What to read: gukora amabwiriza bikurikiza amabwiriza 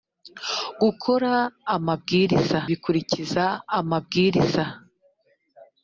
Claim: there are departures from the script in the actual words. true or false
false